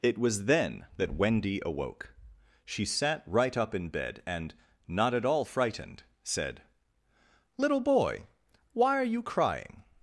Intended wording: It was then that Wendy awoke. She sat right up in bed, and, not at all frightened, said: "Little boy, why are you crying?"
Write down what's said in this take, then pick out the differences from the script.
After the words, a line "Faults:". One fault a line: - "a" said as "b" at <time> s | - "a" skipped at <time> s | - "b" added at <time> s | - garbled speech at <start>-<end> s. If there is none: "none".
It was then that Wendy awoke. She sat right up in bed, and, not at all frightened, said: "Little boy, why are you crying?"
Faults:
none